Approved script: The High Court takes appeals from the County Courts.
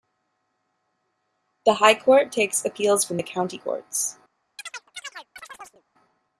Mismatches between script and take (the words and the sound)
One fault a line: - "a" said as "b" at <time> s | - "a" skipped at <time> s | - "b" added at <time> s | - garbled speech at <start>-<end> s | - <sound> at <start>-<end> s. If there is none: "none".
- chirp at 4.6-5.8 s